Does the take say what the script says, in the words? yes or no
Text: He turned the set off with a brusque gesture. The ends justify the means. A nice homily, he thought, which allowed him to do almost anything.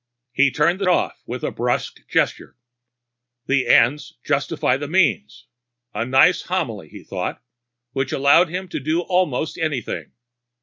no